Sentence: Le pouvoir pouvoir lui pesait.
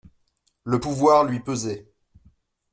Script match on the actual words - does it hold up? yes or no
no